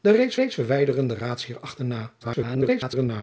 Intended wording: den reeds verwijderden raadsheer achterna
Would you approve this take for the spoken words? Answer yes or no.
no